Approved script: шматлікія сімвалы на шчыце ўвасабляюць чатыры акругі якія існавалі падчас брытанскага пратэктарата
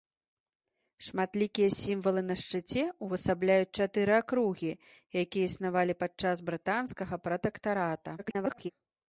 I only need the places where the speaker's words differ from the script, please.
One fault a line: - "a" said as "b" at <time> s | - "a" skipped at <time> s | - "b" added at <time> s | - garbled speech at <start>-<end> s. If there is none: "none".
- garbled speech at 8.2-8.7 s